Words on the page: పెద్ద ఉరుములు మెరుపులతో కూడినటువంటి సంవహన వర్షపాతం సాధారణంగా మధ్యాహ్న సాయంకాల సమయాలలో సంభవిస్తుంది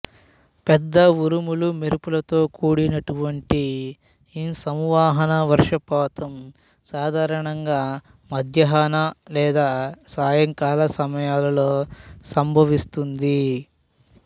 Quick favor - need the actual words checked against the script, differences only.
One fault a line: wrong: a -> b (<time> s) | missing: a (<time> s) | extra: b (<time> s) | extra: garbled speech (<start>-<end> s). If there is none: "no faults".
extra: ఈ (4.3 s)
extra: లేదా (9.4 s)